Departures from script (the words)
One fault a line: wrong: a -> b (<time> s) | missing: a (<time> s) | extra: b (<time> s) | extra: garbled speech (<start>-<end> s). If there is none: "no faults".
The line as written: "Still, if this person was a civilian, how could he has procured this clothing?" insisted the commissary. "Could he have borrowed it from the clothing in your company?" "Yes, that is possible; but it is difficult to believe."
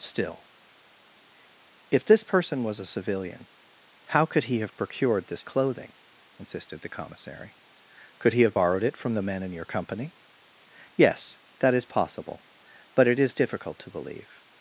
wrong: has -> have (4.6 s)
wrong: clothing -> men (9.2 s)